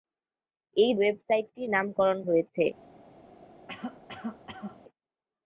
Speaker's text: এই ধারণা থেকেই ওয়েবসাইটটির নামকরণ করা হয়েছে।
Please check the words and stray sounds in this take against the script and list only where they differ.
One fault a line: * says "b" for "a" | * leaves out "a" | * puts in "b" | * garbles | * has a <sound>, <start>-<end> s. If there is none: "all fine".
* leaves out "ধারণা থেকেই"
* leaves out "করা"
* has a cough, 3.7-4.8 s